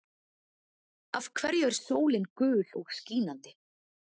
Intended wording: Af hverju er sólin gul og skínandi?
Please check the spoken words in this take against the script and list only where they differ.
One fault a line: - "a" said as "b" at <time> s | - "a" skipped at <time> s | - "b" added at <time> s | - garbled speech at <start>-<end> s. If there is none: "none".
none